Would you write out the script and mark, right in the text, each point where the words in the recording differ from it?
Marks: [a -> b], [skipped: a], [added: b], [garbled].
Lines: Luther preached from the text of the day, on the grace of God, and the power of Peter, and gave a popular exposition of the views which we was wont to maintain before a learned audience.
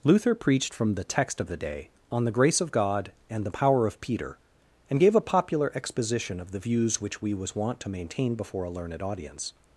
Luther preached from the text of the day, on the grace of God, and the power of Peter, and gave a popular exposition of the views which we was wont to maintain before a learned audience.